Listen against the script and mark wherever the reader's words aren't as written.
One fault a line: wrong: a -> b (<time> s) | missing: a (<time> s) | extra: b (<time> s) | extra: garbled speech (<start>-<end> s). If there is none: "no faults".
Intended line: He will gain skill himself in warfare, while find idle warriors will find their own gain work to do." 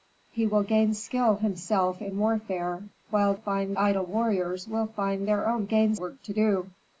no faults